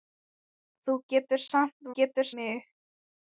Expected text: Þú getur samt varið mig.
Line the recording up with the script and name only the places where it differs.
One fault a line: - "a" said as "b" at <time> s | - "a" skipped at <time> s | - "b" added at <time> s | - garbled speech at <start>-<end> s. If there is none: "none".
- "varið" said as "getur" at 2.0 s